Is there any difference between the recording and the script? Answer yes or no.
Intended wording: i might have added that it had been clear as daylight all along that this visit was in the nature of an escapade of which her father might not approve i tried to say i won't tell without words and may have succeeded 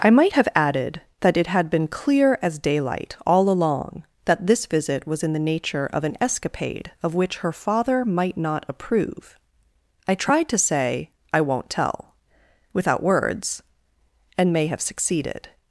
no